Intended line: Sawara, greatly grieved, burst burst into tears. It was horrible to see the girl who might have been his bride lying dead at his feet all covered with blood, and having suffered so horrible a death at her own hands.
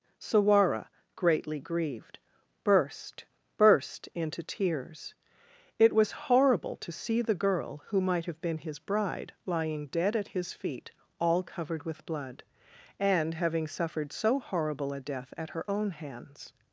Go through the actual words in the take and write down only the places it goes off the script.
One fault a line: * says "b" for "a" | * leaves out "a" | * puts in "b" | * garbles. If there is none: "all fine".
all fine